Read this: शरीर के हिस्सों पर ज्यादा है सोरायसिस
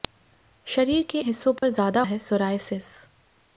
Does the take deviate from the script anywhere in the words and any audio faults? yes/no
yes